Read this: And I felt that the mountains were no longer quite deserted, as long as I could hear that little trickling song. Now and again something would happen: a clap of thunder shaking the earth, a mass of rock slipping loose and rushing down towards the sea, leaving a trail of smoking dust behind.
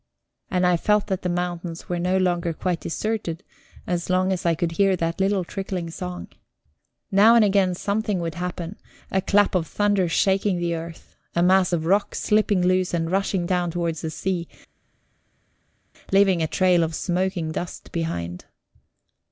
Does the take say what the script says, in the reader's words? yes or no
yes